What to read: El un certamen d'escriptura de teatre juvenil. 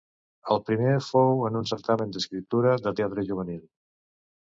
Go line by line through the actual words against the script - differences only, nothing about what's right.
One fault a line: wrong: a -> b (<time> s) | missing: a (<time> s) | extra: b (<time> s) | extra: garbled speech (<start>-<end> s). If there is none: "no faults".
extra: primer fou en (0.7 s)